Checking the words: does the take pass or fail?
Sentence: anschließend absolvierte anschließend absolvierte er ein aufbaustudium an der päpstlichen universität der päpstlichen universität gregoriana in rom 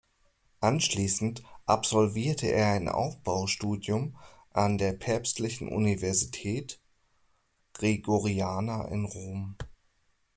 fail